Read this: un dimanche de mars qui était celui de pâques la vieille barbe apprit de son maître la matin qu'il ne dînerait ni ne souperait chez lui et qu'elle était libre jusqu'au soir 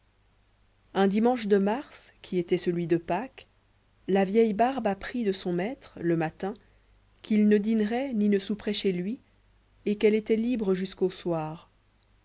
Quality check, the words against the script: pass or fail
fail